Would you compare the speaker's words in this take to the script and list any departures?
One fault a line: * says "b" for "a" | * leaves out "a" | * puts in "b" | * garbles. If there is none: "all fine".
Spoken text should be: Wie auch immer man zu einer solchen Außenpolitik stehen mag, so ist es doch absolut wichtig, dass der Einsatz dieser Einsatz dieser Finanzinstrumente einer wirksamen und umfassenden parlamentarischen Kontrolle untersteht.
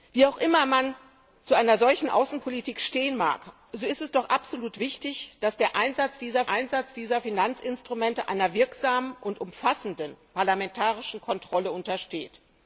all fine